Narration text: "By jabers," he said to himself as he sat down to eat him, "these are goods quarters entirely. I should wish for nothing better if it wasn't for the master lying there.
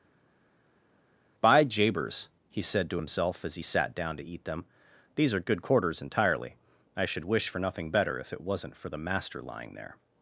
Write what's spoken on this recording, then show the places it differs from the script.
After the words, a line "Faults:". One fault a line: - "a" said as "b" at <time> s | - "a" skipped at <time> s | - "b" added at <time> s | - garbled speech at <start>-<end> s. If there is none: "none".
"By jabers," he said to himself as he sat down to eat them, "these are good quarters entirely. I should wish for nothing better if it wasn't for the master lying there.
Faults:
- "him" said as "them" at 4.4 s
- "goods" said as "good" at 5.4 s